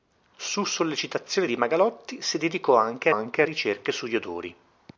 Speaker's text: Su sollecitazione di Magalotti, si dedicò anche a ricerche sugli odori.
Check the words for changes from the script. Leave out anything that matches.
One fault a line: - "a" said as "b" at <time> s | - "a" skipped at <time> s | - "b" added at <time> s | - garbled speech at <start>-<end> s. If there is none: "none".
- "anche" added at 3.1 s